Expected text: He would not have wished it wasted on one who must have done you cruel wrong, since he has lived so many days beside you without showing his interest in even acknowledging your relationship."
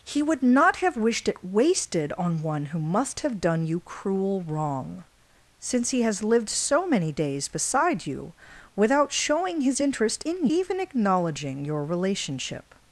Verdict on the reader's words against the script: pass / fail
pass